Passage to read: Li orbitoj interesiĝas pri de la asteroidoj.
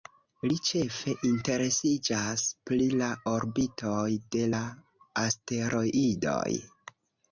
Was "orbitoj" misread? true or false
true